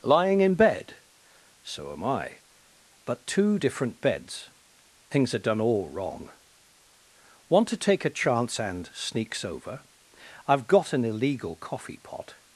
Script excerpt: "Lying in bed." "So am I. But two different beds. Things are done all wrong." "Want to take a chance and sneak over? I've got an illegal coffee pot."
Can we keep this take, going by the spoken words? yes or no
no